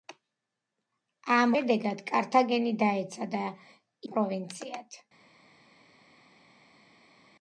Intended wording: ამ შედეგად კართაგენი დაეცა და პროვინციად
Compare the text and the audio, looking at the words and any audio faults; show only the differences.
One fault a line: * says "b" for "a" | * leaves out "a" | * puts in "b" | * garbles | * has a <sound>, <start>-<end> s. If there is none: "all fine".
all fine